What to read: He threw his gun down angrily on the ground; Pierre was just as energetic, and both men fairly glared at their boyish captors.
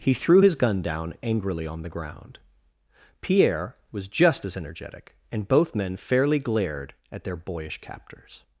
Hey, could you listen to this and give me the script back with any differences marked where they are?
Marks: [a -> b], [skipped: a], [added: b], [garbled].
He threw his gun down angrily on the ground; Pierre was just as energetic, and both men fairly glared at their boyish captors.